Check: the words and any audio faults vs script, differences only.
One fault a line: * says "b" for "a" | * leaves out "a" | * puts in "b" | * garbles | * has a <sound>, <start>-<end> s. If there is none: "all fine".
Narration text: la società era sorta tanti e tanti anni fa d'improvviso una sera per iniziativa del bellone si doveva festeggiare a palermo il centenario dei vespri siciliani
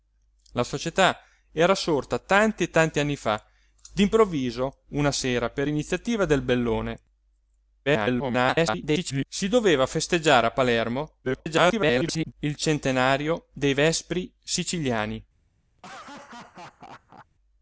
* garbles
* garbles
* has a laugh, 15.8-17.3 s